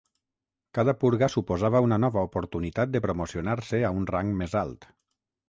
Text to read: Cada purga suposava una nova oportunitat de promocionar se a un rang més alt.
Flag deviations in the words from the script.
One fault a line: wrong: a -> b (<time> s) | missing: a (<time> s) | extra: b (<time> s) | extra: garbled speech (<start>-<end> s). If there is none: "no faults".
no faults